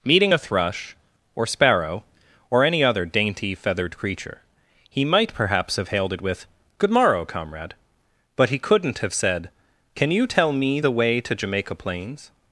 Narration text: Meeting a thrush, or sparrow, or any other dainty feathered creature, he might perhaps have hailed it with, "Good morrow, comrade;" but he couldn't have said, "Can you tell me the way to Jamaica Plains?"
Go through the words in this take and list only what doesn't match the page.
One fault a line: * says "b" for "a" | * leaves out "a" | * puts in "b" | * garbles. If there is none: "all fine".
all fine